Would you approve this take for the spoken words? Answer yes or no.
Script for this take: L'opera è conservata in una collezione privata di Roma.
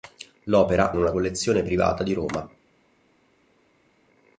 no